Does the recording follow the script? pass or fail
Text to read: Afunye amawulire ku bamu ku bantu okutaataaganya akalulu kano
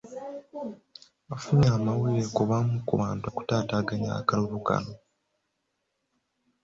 pass